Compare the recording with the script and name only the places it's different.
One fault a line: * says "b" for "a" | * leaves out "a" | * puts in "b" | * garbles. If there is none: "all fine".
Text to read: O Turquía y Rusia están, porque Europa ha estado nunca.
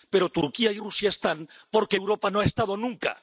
* says "Pero" for "O"
* puts in "no"